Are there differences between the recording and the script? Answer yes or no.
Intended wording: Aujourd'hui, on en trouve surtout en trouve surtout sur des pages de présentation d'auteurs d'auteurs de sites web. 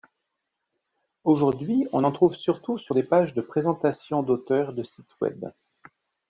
yes